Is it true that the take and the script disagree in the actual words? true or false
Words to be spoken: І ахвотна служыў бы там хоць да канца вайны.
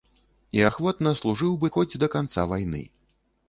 true